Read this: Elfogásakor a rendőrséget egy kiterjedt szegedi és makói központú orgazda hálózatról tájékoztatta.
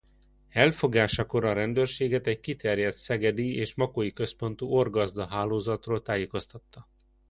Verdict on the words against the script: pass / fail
pass